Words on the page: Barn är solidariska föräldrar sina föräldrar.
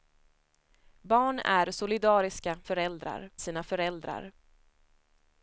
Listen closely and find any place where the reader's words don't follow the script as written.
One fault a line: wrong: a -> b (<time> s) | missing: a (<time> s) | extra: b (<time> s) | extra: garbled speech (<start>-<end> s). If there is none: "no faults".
no faults